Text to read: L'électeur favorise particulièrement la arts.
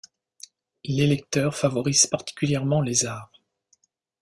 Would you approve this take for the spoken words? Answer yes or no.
no